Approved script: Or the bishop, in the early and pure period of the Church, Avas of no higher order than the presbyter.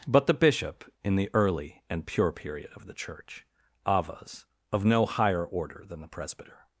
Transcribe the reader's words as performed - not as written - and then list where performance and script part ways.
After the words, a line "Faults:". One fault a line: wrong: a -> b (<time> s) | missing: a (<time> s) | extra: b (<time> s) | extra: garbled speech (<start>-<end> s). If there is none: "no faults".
But the bishop, in the early and pure period of the Church, Avas of no higher order than the presbyter.
Faults:
wrong: Or -> But (0.1 s)